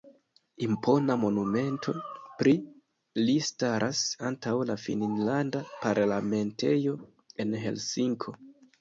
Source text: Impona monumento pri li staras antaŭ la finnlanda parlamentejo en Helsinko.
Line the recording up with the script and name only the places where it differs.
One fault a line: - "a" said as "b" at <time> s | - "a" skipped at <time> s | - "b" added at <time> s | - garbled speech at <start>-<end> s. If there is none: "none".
none